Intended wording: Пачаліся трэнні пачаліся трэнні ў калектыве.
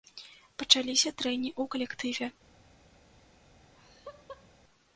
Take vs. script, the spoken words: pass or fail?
fail